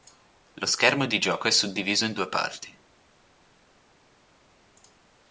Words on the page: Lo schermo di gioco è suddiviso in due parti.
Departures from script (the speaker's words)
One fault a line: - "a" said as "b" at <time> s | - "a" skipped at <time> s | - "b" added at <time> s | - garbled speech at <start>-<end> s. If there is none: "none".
none